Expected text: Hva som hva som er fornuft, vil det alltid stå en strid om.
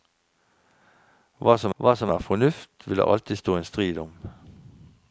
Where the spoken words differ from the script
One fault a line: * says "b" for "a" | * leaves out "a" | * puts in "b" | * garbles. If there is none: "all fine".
all fine